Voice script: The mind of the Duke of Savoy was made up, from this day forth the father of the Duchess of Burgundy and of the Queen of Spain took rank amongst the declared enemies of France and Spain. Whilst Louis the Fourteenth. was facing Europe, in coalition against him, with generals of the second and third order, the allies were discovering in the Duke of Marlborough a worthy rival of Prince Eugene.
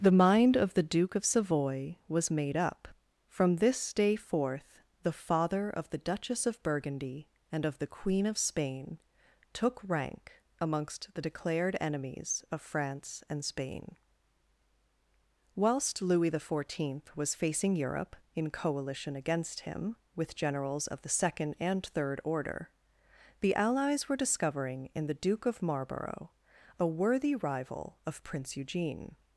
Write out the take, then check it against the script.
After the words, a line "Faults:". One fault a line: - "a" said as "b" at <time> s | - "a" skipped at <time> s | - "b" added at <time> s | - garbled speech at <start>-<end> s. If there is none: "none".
The mind of the Duke of Savoy was made up, from this day forth the father of the Duchess of Burgundy and of the Queen of Spain took rank amongst the declared enemies of France and Spain. Whilst Louis the Fourteenth. was facing Europe, in coalition against him, with generals of the second and third order, the allies were discovering in the Duke of Marlborough a worthy rival of Prince Eugene.
Faults:
none